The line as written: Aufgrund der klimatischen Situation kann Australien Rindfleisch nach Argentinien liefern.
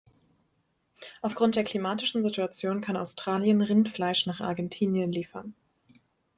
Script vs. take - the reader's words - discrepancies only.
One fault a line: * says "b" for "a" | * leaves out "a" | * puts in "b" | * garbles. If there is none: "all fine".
all fine